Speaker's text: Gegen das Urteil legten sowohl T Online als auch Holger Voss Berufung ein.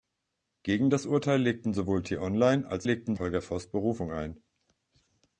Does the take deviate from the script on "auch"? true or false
true